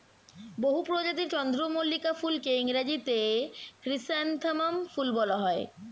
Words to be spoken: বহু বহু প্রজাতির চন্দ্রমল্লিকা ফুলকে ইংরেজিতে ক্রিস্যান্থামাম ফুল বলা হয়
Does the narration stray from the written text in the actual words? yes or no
yes